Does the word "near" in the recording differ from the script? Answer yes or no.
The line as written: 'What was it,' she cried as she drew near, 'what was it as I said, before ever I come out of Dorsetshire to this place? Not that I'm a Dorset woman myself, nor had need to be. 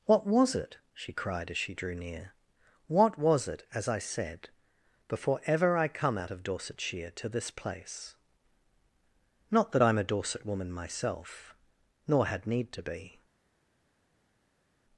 no